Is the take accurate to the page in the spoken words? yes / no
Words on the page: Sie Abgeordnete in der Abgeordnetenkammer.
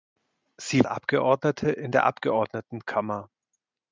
yes